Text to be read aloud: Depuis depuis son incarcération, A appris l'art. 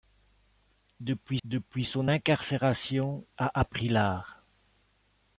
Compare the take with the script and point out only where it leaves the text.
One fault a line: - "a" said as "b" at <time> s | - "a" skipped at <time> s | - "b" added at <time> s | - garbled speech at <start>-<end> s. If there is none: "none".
none